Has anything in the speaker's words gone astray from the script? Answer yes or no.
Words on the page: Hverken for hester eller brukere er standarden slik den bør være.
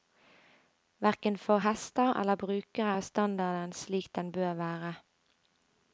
no